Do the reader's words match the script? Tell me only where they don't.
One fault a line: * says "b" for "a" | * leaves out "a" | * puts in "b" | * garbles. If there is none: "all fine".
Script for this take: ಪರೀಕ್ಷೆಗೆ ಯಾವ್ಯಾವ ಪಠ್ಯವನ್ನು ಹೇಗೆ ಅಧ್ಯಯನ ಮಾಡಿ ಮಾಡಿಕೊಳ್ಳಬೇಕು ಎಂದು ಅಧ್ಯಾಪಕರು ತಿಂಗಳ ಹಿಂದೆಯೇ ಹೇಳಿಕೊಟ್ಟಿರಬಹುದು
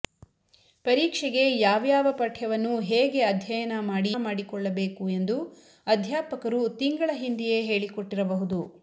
all fine